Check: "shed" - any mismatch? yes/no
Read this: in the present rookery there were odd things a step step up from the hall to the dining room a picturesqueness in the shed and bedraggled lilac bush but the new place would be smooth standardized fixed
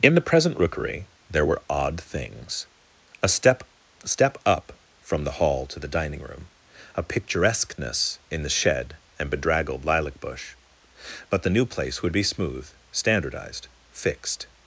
no